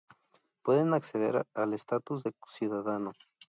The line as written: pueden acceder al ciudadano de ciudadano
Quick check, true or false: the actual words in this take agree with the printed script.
false